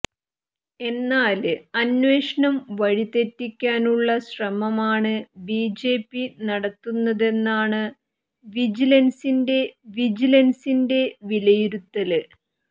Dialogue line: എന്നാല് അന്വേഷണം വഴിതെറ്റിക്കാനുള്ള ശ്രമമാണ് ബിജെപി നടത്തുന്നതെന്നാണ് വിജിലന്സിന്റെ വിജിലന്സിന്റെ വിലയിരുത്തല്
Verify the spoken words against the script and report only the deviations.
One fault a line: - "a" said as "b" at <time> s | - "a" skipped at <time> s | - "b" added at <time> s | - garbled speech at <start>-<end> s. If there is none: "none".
none